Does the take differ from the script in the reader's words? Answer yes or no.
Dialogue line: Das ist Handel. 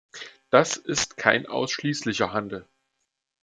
yes